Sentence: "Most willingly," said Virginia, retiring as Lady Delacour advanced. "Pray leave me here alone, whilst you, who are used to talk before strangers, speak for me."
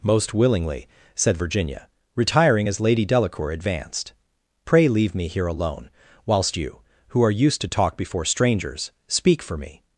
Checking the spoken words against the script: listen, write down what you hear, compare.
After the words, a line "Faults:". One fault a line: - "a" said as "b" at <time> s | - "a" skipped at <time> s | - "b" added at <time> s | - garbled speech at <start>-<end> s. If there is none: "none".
"Most willingly," said Virginia, retiring as Lady Delacour advanced. "Pray leave me here alone, whilst you, who are used to talk before strangers, speak for me."
Faults:
none